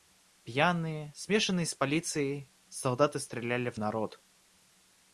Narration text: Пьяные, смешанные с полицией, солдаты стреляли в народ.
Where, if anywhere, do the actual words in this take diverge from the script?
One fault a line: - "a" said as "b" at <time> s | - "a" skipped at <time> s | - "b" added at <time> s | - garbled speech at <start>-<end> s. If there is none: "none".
none